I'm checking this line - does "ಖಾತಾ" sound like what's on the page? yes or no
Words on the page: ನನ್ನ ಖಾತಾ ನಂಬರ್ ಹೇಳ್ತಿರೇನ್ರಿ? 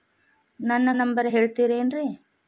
no